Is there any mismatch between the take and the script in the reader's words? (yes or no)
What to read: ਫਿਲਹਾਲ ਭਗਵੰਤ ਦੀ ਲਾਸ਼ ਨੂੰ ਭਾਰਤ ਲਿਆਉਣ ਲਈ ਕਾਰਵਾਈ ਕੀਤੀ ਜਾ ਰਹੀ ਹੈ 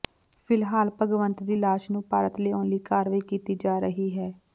no